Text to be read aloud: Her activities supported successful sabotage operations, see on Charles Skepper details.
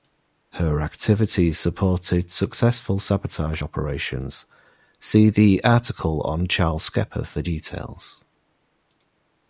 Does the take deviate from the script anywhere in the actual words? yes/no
yes